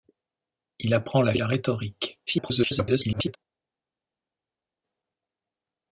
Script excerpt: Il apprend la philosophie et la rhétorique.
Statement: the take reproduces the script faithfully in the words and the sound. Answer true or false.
false